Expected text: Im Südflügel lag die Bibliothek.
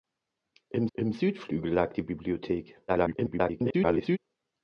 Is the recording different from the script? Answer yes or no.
yes